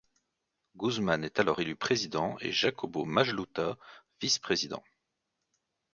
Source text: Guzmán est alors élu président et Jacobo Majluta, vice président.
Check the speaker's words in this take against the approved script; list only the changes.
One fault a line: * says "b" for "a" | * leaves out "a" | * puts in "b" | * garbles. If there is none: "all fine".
all fine